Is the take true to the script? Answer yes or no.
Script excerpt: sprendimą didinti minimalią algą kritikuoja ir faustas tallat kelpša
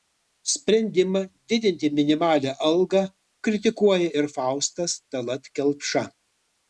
yes